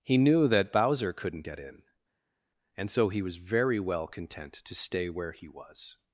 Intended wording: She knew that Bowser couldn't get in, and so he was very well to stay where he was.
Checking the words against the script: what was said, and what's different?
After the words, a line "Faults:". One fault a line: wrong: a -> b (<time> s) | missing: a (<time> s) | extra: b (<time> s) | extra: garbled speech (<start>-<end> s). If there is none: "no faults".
He knew that Bowser couldn't get in, and so he was very well content to stay where he was.
Faults:
wrong: She -> He (0.0 s)
extra: content (4.1 s)